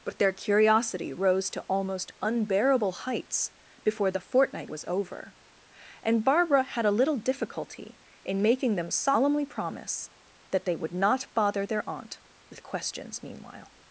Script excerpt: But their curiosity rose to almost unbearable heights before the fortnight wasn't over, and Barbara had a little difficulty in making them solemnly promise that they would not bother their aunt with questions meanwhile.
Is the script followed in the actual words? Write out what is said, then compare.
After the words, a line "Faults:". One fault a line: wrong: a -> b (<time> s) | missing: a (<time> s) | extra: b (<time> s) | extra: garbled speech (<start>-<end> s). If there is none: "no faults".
But their curiosity rose to almost unbearable heights before the fortnight was over, and Barbara had a little difficulty in making them solemnly promise that they would not bother their aunt with questions meanwhile.
Faults:
wrong: wasn't -> was (4.7 s)